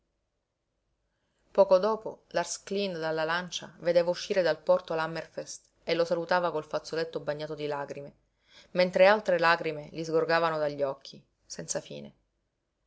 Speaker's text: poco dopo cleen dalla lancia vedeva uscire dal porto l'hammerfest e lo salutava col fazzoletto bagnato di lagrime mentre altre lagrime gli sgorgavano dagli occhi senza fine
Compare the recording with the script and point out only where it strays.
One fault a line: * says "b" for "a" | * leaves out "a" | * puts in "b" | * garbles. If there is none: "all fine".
* puts in "lars"